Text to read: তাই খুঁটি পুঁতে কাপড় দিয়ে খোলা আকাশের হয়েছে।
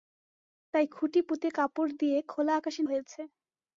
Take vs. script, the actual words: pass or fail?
pass